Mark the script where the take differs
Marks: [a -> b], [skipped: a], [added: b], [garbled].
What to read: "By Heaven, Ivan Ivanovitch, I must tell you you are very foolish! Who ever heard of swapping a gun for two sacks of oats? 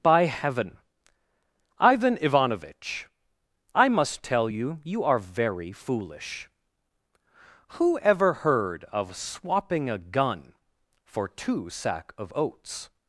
"By Heaven, Ivan Ivanovitch, I must tell you you are very foolish! Who ever heard of swapping a gun for two [sacks -> sack] of oats?